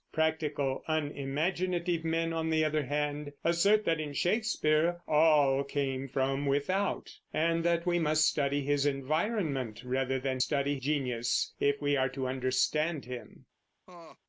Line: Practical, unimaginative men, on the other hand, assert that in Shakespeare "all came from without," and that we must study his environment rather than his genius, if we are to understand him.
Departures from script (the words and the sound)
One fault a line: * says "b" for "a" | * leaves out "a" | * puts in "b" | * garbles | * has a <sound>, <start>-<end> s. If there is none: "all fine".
* says "study" for "his"
* has a laugh, 13.9-14.2 s